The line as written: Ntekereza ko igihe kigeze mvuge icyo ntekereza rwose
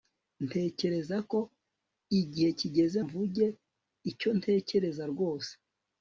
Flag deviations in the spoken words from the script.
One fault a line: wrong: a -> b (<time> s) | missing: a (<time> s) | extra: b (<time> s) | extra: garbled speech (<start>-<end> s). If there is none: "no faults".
no faults